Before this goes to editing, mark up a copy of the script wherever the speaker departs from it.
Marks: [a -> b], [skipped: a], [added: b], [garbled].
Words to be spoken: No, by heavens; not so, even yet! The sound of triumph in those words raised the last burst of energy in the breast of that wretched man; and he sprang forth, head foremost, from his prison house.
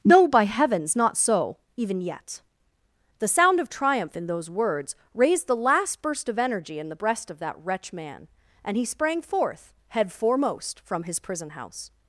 No, by heavens; not so, even yet! The sound of triumph in those words raised the last burst of energy in the breast of that [wretched -> wretch] man; and he sprang forth, head foremost, from his prison house.